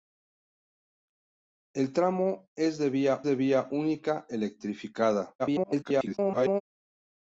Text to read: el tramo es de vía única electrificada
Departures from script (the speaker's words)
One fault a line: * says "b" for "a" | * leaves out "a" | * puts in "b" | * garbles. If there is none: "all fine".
* puts in "de vía"
* garbles